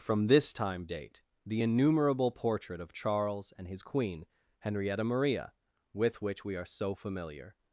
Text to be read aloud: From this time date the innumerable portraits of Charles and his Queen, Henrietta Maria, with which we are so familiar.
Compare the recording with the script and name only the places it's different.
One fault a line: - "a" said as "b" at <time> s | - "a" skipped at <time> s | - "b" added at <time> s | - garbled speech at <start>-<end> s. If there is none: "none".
- "portraits" said as "portrait" at 2.3 s